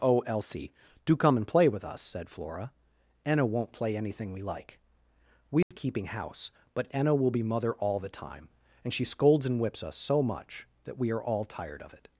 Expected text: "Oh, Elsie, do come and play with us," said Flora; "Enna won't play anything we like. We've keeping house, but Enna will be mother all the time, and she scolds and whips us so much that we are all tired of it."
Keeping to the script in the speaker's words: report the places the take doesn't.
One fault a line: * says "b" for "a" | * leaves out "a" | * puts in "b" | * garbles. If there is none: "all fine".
all fine